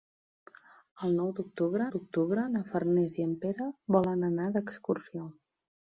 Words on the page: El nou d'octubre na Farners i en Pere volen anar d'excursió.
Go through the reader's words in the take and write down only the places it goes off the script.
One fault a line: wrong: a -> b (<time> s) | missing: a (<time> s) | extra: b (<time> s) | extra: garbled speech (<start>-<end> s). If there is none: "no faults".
extra: d'octubre (1.9 s)